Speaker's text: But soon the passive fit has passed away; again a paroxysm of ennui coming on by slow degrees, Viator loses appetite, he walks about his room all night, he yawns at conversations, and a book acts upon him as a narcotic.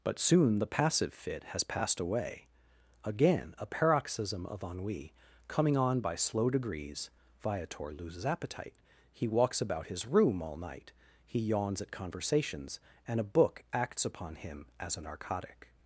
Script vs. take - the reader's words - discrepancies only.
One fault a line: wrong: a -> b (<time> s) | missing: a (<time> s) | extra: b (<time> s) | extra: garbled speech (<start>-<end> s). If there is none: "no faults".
no faults